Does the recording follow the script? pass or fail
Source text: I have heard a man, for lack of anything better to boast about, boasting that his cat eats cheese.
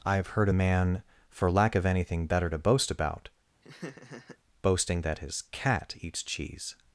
pass